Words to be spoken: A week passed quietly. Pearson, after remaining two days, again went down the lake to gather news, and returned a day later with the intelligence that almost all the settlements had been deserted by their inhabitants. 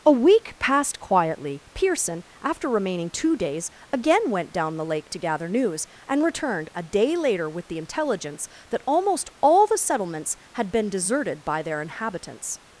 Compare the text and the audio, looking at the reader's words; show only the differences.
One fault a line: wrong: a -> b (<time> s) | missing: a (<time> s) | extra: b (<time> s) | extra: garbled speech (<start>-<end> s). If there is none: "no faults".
no faults